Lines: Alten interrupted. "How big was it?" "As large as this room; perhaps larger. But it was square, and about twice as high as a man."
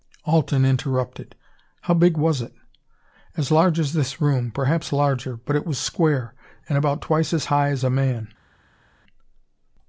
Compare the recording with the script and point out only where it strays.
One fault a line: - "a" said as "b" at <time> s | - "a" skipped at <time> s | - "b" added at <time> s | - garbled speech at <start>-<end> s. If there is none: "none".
none